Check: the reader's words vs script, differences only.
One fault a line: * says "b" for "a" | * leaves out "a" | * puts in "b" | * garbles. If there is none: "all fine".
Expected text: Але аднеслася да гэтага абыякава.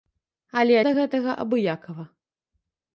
* leaves out "аднеслася"